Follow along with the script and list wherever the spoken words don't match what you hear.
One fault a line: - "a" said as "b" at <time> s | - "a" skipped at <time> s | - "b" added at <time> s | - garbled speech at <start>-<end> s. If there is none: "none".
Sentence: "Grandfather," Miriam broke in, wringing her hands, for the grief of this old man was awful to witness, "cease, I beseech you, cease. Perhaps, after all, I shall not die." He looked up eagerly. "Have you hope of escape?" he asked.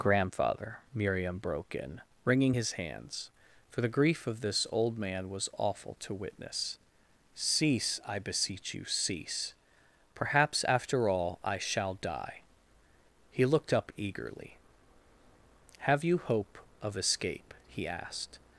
- "her" said as "his" at 2.5 s
- "not" skipped at 11.9 s